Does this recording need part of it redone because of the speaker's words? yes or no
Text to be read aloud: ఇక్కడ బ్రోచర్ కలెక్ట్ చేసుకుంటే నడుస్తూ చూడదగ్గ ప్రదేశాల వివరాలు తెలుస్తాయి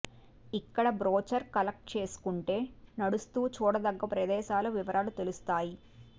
no